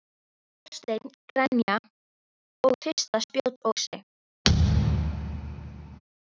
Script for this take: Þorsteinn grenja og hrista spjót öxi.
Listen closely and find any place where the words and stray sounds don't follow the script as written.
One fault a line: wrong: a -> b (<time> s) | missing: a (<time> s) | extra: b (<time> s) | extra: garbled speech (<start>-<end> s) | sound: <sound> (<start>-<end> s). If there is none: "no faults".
sound: thud (4.4-6.0 s)